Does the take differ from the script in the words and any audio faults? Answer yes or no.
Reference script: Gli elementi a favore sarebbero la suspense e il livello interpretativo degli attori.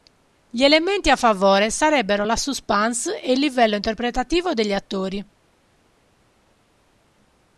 no